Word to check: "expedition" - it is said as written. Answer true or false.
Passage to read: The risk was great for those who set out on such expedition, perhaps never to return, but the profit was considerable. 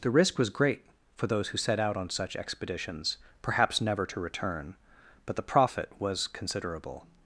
false